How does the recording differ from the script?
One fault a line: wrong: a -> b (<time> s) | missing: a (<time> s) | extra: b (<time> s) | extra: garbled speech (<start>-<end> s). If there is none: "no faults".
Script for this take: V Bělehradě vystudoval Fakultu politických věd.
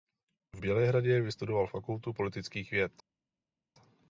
no faults